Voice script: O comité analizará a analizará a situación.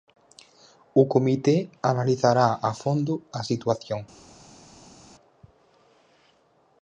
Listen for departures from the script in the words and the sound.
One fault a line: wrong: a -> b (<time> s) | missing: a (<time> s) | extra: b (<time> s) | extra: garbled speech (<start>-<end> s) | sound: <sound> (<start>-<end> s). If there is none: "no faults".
wrong: analizará -> fondo (2.8 s)